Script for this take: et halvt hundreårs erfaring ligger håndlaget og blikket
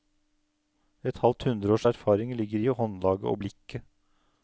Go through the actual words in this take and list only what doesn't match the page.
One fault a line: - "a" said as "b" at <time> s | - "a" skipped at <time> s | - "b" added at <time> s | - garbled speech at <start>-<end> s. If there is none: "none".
- "i" added at 2.7 s